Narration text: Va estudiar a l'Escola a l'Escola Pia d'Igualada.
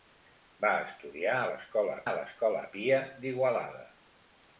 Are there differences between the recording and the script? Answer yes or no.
no